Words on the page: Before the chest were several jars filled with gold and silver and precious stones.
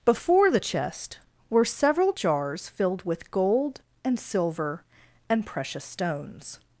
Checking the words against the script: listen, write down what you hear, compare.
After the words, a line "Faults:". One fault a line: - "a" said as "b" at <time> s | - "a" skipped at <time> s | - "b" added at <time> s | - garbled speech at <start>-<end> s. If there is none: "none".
Before the chest were several jars filled with gold and silver and precious stones.
Faults:
none